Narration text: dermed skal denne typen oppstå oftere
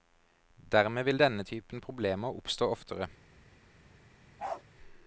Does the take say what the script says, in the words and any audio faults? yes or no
no